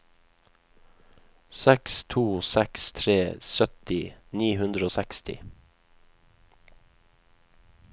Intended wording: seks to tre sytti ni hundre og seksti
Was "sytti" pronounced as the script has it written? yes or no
yes